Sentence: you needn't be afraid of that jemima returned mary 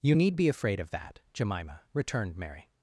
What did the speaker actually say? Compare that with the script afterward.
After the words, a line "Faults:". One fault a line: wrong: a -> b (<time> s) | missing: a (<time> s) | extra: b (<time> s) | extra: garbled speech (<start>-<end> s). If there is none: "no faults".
you need be afraid of that jemima returned mary
Faults:
wrong: needn't -> need (0.1 s)